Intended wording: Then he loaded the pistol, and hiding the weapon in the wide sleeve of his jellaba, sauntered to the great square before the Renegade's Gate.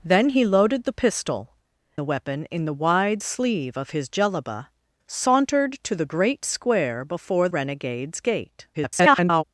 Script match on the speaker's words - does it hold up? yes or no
no